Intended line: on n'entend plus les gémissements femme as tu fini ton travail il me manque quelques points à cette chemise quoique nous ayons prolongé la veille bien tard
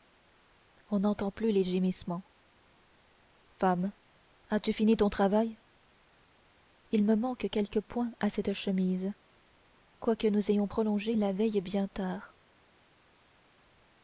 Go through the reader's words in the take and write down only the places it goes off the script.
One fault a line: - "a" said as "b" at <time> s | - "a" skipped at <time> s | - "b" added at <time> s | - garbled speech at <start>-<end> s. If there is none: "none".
none